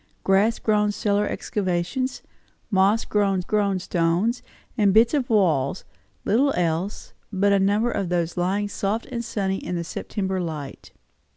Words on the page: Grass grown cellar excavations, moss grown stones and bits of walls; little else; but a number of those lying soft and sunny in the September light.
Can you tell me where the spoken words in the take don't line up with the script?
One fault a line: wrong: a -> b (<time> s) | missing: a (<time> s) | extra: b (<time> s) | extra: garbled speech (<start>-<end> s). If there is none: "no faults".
extra: grown (3.4 s)